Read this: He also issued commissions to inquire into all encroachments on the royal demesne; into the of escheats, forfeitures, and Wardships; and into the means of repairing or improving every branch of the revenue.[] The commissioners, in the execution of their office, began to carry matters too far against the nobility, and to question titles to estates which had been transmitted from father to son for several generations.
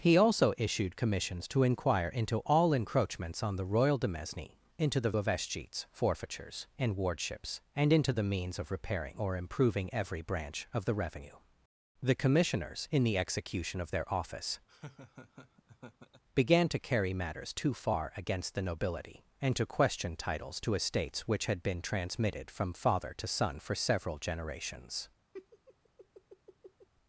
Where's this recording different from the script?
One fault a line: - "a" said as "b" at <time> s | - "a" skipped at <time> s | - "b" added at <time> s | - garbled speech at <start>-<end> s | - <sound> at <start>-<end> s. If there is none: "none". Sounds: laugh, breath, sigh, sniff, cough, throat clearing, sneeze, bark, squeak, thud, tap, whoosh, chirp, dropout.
- laugh at 14.7-16.2 s
- laugh at 25.3-26.9 s